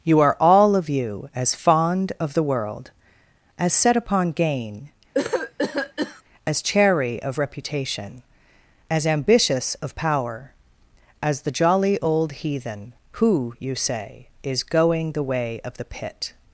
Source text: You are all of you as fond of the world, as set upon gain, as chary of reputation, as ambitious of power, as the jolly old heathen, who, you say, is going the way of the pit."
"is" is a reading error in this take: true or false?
false